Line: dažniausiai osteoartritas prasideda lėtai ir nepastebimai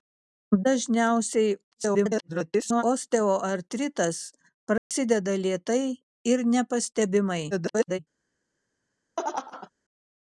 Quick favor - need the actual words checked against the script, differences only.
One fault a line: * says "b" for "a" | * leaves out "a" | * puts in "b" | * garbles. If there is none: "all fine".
* garbles
* garbles